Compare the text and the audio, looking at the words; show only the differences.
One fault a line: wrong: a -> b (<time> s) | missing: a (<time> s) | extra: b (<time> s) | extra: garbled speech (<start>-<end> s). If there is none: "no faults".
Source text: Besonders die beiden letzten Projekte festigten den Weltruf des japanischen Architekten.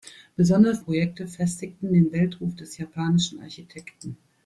missing: die beiden letzten (0.8 s)